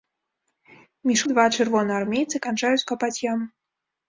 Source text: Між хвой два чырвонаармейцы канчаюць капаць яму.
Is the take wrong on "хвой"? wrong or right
wrong